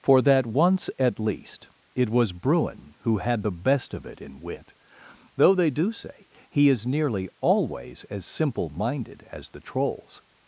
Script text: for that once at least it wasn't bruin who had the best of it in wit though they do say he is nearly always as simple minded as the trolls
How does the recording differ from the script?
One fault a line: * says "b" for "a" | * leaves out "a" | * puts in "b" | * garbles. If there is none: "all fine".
* says "was" for "wasn't"